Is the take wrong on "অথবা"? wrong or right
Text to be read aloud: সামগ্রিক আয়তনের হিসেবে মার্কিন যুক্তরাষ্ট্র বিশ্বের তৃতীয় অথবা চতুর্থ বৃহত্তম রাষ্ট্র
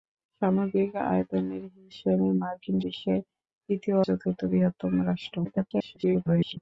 wrong